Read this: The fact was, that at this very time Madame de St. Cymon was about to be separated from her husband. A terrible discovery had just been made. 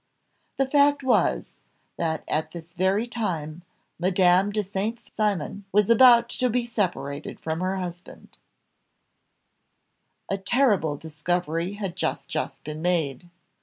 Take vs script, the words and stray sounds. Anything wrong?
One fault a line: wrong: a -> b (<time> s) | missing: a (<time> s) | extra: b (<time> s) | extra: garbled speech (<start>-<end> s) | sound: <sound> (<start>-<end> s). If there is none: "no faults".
extra: just (12.3 s)